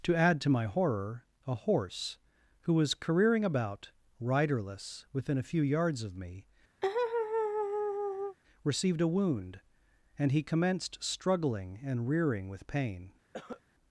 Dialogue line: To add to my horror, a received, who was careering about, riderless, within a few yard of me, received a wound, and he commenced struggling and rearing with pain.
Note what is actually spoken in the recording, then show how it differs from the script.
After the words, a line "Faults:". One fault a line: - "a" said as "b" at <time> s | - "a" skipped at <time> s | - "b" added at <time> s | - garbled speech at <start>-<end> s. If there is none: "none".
To add to my horror, a horse, who was careering about, riderless, within a few yards of me, received a wound, and he commenced struggling and rearing with pain.
Faults:
- "received" said as "horse" at 1.6 s
- "yard" said as "yards" at 5.6 s